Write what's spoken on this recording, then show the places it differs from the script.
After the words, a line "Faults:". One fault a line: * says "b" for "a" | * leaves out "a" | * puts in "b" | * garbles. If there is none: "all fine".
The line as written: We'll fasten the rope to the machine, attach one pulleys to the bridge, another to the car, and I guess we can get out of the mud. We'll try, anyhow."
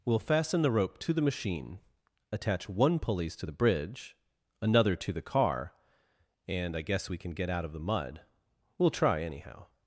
We'll fasten the rope to the machine, attach one pulleys to the bridge, another to the car, and I guess we can get out of the mud. We'll try, anyhow."
Faults:
all fine